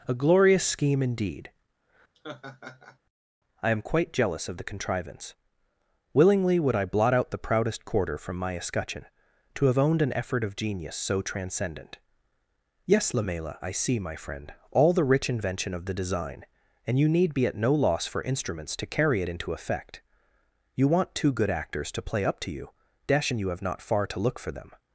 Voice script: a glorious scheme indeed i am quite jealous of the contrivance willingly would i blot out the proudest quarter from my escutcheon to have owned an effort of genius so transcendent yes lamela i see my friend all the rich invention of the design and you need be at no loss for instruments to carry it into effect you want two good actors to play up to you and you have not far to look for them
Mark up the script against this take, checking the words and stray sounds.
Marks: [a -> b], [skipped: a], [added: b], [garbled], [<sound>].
a glorious scheme indeed [laugh] i am quite jealous of the contrivance willingly would i blot out the proudest quarter from my escutcheon to have owned an effort of genius so transcendent yes lamela i see my friend all the rich invention of the design and you need be at no loss for instruments to carry it into effect you want two good actors to play up to you [added: dash] and you have not far to look for them